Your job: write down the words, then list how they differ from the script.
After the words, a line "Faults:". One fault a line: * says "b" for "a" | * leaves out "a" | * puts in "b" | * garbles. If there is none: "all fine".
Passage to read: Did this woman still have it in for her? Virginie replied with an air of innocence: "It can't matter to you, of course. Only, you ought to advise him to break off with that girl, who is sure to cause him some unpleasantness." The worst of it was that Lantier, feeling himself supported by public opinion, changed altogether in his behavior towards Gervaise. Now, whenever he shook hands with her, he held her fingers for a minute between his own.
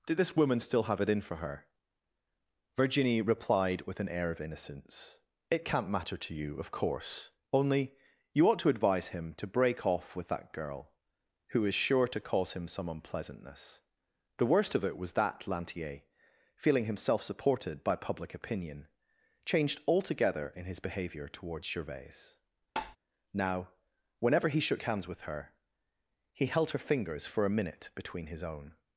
Did this woman still have it in for her? Virginie replied with an air of innocence: "It can't matter to you, of course. Only, you ought to advise him to break off with that girl, who is sure to cause him some unpleasantness." The worst of it was that Lantier, feeling himself supported by public opinion, changed altogether in his behavior towards Gervaise. Now, whenever he shook hands with her, he held her fingers for a minute between his own.
Faults:
all fine